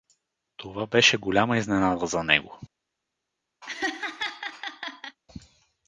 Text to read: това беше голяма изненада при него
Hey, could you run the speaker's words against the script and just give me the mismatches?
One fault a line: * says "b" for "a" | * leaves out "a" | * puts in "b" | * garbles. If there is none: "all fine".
* says "за" for "при"